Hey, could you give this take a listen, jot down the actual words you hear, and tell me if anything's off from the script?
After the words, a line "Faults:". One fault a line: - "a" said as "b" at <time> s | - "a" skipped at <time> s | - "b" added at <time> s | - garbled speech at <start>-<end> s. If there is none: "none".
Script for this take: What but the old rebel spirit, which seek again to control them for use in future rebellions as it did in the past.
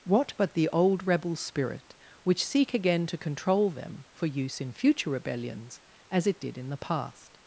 What but the old rebel spirit, which seek again to control them for use in future rebellions as it did in the past.
Faults:
none